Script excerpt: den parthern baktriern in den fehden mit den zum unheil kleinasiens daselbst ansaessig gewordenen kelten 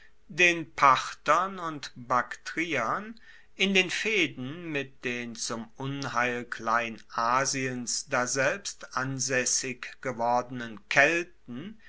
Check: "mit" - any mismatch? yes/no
no